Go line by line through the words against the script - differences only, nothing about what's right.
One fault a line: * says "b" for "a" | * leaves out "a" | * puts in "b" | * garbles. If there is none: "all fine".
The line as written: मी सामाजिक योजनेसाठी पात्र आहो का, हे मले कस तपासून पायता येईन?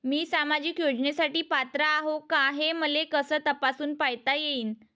all fine